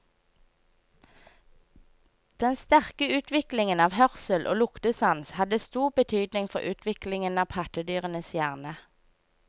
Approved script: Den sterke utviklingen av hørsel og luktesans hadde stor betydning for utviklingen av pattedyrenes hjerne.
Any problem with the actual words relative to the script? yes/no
no